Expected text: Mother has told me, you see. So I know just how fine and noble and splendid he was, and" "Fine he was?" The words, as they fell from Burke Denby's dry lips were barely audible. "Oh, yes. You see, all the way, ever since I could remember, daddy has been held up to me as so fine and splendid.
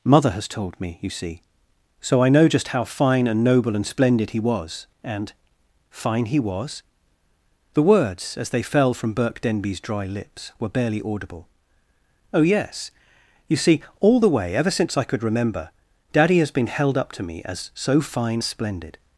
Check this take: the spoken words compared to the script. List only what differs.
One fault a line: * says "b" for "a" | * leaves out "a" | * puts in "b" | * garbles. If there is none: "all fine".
* leaves out "and"